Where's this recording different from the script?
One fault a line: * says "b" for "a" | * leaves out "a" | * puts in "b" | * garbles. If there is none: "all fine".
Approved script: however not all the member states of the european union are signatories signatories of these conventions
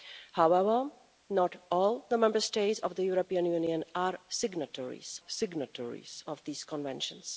all fine